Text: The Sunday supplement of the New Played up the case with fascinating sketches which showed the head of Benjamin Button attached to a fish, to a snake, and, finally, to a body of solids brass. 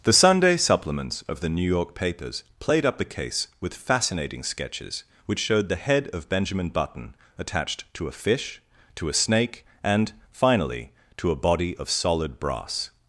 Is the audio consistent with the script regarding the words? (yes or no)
no